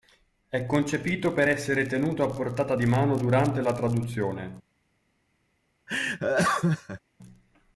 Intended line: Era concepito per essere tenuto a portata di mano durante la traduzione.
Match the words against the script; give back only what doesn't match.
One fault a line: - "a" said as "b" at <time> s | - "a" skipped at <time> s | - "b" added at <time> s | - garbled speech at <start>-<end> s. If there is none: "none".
- "Era" said as "È" at 0.5 s